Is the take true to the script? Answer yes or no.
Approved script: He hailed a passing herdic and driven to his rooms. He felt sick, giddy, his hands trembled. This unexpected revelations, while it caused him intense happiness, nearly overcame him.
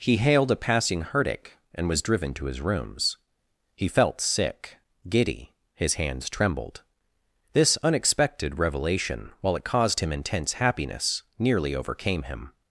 no